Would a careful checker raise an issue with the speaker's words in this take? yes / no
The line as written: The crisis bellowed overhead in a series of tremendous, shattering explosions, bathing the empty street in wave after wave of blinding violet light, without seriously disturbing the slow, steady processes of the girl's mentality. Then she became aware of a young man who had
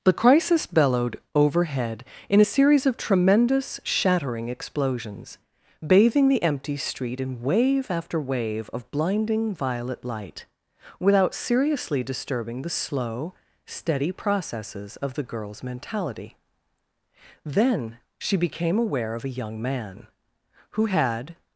no